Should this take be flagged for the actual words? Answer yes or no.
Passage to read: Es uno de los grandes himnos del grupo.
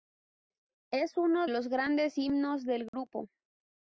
yes